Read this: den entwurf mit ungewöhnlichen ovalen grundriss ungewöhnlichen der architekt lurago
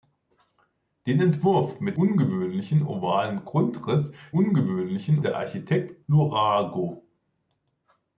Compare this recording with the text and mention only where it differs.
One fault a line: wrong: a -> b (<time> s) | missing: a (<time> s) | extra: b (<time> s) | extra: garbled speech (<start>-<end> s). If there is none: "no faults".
no faults